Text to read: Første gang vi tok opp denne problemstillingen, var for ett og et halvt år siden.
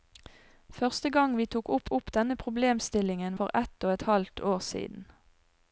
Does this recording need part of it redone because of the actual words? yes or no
yes